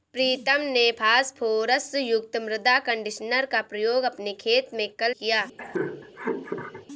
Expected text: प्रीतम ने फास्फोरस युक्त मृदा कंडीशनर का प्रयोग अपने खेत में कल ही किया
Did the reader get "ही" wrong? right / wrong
wrong